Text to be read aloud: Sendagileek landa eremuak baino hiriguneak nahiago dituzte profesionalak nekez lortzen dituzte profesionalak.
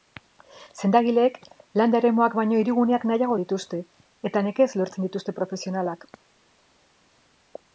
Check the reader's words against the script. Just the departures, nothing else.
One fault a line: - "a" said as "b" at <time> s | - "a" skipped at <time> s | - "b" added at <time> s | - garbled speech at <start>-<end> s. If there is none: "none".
- "profesionalak" said as "eta" at 4.3 s